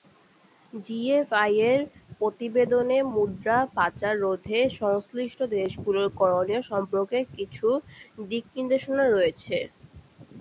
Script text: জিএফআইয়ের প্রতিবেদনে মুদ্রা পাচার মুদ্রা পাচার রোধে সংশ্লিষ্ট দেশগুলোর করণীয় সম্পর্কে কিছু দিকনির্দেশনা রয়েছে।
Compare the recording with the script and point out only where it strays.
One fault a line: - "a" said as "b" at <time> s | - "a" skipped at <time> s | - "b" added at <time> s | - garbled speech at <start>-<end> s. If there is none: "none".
- "মুদ্রা পাচার" skipped at 4.1 s